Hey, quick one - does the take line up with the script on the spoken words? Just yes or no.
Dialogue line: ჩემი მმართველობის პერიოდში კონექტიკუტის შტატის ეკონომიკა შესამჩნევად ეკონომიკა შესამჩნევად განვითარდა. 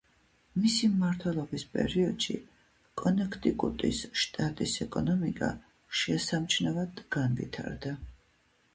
no